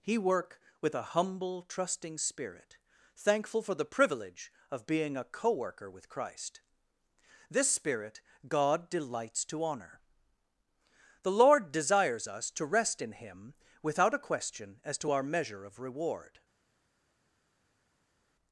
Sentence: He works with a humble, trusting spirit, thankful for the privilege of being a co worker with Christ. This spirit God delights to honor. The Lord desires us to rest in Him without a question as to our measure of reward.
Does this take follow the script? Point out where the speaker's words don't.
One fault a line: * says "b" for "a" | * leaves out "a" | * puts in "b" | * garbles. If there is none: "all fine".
* says "work" for "works"